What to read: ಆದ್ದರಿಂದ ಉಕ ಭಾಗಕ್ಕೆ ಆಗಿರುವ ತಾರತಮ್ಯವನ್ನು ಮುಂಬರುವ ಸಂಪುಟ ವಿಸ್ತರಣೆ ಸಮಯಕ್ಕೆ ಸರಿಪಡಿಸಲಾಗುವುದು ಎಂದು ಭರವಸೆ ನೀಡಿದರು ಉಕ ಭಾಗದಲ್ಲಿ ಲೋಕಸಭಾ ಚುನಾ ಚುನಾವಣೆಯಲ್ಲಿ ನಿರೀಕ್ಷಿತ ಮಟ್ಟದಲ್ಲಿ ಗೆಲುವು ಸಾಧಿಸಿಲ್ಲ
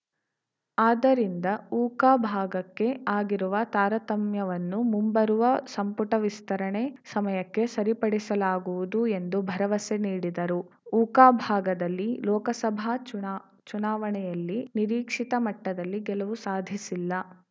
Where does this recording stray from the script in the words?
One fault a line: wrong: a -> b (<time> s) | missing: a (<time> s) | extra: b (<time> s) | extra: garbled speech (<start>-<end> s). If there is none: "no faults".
no faults